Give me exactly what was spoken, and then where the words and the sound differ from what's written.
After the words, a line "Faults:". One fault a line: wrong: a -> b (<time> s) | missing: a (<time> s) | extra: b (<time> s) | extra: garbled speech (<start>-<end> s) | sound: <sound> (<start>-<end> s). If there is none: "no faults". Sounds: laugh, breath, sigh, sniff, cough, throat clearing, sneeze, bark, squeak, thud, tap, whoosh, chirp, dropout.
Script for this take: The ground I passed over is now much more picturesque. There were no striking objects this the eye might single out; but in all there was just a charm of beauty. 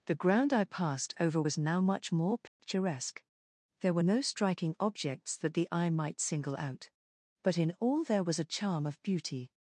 The ground I passed over was now much more picturesque. There were no striking objects that the eye might single out; but in all there was a charm of beauty.
Faults:
wrong: is -> was (1.4 s)
sound: dropout (2.5-2.6 s)
wrong: this -> that (5.4 s)
missing: just (8.4 s)